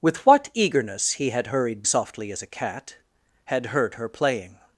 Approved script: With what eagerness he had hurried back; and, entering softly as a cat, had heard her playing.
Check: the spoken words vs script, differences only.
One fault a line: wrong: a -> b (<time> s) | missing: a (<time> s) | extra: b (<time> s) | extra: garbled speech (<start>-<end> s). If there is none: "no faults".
missing: back and entering (1.9 s)